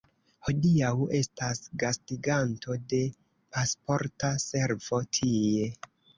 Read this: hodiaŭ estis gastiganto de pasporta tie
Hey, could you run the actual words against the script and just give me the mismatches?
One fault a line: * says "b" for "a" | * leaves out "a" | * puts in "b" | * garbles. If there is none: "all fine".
* says "estas" for "estis"
* puts in "servo"